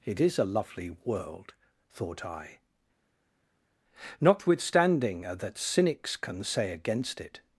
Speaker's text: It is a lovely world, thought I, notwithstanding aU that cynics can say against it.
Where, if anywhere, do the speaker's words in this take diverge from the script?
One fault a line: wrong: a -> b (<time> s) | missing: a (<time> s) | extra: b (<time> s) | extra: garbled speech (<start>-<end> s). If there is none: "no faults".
missing: aU (5.2 s)